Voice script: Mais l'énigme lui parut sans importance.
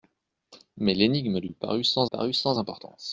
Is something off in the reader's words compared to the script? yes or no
yes